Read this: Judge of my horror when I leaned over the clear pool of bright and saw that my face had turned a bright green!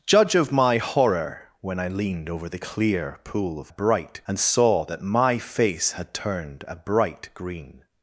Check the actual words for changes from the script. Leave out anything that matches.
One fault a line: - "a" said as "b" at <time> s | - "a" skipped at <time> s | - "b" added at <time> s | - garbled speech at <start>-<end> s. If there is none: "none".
none